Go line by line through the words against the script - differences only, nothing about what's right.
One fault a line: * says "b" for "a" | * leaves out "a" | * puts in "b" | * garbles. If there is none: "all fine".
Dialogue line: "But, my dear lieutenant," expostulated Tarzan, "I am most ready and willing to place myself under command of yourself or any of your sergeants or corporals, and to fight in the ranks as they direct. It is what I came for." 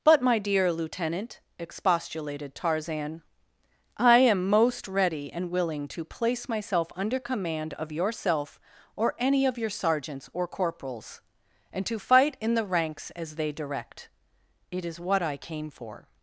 all fine